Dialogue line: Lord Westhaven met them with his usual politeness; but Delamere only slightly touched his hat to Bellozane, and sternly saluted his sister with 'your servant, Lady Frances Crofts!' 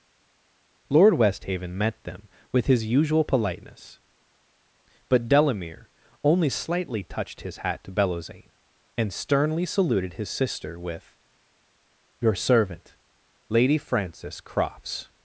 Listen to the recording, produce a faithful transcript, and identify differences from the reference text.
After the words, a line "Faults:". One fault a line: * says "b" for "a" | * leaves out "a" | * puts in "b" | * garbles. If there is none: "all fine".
Lord Westhaven met them with his usual politeness; but Delamere only slightly touched his hat to Bellozane, and sternly saluted his sister with 'your servant, Lady Frances Crofts!'
Faults:
all fine